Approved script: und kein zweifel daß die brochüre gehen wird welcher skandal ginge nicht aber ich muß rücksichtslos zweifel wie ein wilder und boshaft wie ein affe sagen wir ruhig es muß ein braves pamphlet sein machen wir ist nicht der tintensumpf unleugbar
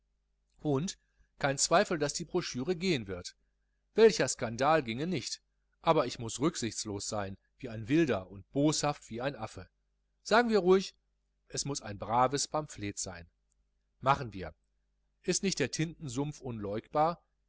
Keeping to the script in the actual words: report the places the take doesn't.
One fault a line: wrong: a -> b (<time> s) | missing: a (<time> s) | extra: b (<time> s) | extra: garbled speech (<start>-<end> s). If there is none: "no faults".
wrong: zweifel -> sein (7.1 s)